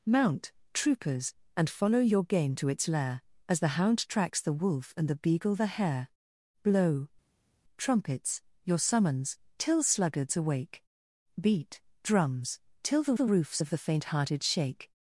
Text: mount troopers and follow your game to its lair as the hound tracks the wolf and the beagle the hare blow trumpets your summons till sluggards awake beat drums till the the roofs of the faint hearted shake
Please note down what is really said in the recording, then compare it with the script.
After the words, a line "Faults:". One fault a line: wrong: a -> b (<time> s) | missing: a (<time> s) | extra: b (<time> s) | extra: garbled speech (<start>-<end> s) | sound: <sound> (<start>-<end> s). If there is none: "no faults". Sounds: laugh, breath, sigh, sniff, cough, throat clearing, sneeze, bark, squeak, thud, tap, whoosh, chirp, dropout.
mount troopers and follow your game to its lair as the hound tracks the wolf and the beagle the hare blow trumpets your summons till sluggards awake beat drums till the the roofs of the faint hearted shake
Faults:
no faults